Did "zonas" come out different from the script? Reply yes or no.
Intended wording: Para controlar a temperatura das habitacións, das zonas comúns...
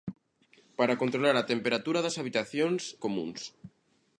yes